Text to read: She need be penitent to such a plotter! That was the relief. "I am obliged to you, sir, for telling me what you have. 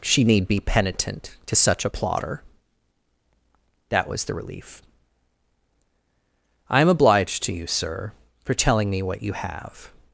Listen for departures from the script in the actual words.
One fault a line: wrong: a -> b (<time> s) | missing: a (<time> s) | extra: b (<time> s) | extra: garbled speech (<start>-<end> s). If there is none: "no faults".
no faults